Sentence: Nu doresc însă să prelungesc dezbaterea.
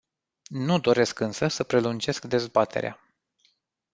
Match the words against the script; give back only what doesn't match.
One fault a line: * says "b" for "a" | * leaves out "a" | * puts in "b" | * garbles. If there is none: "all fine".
all fine